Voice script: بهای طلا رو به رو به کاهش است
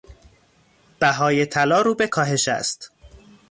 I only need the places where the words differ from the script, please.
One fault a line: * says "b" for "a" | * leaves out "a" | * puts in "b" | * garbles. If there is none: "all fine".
* leaves out "رو به"